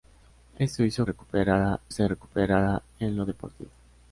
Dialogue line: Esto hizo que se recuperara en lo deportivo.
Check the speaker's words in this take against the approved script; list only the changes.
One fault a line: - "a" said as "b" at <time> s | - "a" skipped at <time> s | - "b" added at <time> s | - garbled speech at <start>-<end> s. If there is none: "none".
- "que" said as "recuperara" at 1.1 s